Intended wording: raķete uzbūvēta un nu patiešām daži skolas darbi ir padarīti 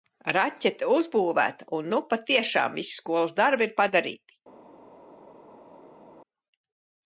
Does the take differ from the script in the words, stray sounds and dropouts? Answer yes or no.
yes